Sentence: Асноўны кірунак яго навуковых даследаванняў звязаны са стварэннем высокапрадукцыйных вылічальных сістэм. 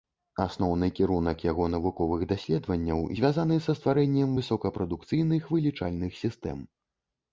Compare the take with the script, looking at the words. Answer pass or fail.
pass